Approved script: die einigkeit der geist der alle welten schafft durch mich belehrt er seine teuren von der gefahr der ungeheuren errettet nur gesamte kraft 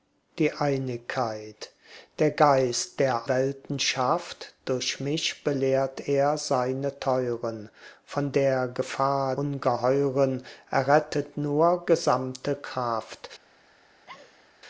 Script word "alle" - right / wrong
wrong